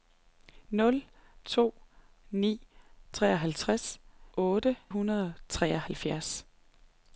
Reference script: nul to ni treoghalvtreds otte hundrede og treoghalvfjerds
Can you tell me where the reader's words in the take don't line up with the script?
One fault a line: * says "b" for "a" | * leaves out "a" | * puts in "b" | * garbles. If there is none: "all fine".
all fine